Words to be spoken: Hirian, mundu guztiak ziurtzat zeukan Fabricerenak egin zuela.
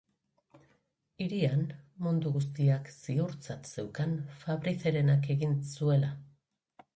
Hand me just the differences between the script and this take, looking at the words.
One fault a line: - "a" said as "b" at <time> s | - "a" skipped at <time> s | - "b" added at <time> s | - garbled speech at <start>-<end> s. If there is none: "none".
none